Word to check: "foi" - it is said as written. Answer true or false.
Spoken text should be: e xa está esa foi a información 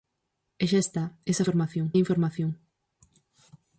false